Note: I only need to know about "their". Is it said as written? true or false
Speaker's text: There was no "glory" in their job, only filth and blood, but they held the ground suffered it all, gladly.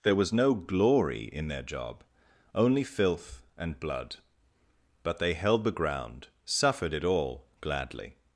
true